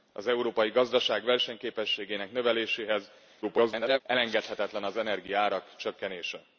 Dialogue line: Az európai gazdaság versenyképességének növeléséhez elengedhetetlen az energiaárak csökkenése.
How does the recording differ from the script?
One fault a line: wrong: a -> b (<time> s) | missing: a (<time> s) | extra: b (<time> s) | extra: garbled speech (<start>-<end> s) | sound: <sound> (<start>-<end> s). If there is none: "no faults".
extra: garbled speech (3.4-4.0 s)